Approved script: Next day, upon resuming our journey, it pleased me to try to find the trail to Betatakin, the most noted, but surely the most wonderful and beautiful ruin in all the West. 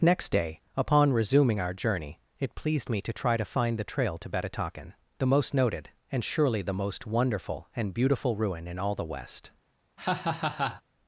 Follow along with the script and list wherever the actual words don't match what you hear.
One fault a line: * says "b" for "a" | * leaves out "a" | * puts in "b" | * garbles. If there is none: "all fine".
* says "and" for "but"